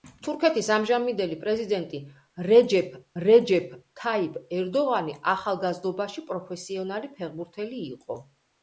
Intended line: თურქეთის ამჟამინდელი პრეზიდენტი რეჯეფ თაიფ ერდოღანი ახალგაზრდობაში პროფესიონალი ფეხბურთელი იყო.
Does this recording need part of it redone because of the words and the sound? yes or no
yes